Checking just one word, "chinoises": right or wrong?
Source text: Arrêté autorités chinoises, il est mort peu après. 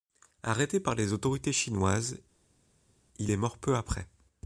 right